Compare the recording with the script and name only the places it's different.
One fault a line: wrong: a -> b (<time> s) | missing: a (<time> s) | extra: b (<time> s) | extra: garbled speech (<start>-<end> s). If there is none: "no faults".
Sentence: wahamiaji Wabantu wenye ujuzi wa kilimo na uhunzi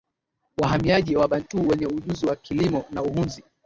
no faults